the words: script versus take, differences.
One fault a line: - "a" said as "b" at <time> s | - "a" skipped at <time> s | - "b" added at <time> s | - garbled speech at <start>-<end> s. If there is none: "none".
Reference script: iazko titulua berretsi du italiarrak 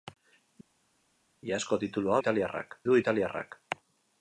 - "berretsi" said as "italiarrak" at 2.2 s